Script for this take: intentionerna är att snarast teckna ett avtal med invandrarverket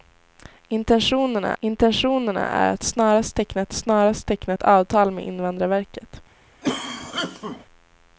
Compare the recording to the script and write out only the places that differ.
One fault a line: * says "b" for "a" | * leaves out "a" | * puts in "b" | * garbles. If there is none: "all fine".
* puts in "intentionerna"
* puts in "snarast teckna ett"